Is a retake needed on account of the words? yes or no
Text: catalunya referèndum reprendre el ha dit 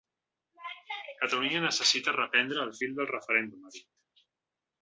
yes